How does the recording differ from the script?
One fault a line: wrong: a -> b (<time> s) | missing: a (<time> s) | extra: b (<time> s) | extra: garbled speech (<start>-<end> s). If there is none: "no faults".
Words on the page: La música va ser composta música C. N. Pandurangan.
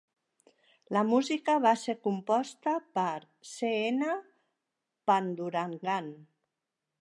wrong: música -> per (3.0 s)